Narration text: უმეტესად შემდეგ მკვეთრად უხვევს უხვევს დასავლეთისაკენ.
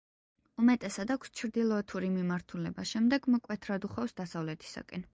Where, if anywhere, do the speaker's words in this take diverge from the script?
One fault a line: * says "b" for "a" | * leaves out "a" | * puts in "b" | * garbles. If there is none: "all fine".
* puts in "აქვს ჩრდილოეთური მიმართულება"
* leaves out "უხვევს"